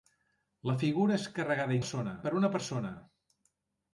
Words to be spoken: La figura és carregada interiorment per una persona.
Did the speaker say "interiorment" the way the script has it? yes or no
no